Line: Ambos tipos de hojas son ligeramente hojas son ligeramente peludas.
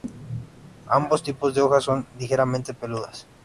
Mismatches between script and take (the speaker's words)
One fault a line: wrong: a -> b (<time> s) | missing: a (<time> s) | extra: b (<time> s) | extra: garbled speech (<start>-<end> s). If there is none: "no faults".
missing: hojas son ligeramente (2.7 s)